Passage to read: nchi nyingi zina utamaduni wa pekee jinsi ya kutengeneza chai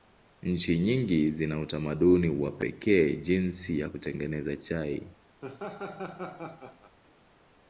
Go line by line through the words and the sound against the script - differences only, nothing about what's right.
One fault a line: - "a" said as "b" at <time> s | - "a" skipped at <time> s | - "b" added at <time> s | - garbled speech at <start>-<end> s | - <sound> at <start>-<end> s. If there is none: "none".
- laugh at 5.4-7.0 s